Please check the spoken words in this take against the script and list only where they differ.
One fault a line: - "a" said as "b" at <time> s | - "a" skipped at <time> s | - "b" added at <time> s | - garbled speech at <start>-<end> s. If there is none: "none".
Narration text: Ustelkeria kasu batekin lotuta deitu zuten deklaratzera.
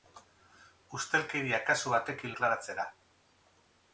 - "lotuta deitu zuten" skipped at 2.4 s